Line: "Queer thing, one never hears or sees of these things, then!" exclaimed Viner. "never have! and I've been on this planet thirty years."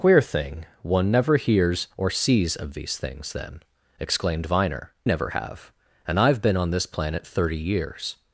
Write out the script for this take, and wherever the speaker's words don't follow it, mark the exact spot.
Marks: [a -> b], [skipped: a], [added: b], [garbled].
"Queer thing, one never hears or sees of these things, then!" exclaimed Viner. "never have! and I've been on this planet thirty years."